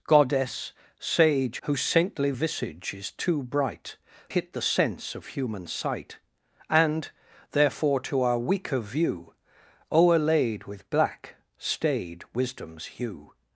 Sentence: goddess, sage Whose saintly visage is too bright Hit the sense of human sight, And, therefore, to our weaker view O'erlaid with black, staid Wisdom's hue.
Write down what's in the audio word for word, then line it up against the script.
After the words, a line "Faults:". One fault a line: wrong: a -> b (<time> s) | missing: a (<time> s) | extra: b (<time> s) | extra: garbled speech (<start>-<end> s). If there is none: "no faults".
goddess, sage Whose saintly visage is too bright Hit the sense of human sight, And, therefore, to our weaker view O'erlaid with black, staid Wisdom's hue.
Faults:
no faults